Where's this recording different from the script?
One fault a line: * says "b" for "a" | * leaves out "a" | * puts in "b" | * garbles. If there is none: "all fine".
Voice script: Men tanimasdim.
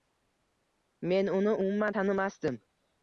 * puts in "uni umuman"